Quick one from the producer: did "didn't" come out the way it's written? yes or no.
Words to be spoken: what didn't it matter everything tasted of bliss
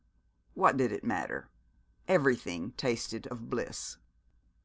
no